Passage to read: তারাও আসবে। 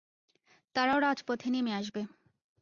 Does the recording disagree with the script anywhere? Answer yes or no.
yes